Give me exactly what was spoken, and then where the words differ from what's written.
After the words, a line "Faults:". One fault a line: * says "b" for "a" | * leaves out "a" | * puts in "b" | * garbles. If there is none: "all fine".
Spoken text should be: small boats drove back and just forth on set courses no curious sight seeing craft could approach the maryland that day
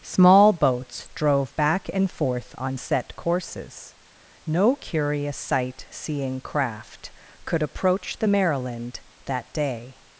small boats drove back and forth on set courses no curious sight seeing craft could approach the maryland that day
Faults:
* leaves out "just"